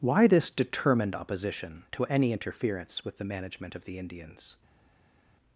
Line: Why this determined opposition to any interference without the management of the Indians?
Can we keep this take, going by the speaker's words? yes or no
no